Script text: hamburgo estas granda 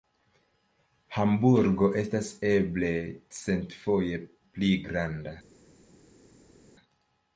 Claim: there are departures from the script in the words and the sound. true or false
true